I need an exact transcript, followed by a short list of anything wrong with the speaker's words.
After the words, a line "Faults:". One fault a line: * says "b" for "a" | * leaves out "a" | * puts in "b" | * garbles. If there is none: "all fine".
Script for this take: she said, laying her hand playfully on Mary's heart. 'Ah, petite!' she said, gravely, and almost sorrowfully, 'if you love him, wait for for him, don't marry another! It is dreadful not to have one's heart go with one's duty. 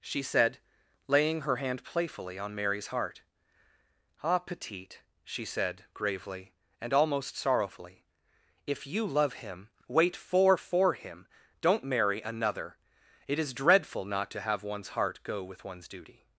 she said, laying her hand playfully on Mary's heart. 'Ah, petite!' she said, gravely, and almost sorrowfully, 'if you love him, wait for for him, don't marry another! It is dreadful not to have one's heart go with one's duty.
Faults:
all fine